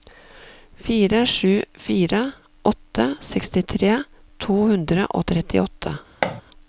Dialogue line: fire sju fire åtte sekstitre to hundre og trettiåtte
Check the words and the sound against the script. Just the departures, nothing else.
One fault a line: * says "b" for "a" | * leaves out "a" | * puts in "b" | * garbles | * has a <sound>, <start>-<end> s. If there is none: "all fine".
* has a thud, 6.2-6.4 s